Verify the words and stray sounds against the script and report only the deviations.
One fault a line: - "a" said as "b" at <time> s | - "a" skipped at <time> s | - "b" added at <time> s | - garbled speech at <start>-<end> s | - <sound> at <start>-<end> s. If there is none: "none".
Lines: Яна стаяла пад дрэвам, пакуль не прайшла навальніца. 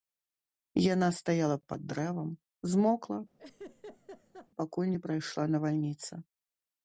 - "змокла" added at 2.7 s
- laugh at 3.4-4.5 s